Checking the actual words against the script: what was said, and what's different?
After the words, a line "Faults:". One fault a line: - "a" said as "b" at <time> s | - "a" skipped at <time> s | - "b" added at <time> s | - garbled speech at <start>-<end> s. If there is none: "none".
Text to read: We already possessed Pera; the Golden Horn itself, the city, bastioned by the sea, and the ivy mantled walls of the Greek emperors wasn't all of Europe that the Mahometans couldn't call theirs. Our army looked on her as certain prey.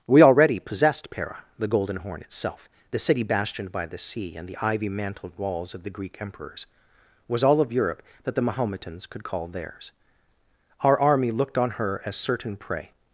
We already possessed Pera; the Golden Horn itself, the city, bastioned by the sea, and the ivy mantled walls of the Greek emperors was all of Europe that the Mahometans could call theirs. Our army looked on her as certain prey.
Faults:
- "wasn't" said as "was" at 7.3 s
- "couldn't" said as "could" at 9.1 s